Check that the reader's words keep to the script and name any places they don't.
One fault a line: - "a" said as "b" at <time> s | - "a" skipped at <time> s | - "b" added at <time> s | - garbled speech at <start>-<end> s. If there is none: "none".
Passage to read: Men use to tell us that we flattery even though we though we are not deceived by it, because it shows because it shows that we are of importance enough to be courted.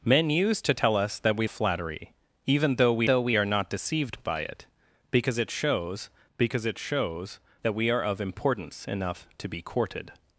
none